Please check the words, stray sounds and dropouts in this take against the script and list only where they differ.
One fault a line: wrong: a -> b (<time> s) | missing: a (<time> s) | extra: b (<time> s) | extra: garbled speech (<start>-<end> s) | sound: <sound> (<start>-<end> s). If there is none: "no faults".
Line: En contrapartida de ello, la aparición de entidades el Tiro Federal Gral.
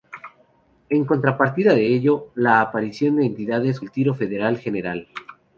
no faults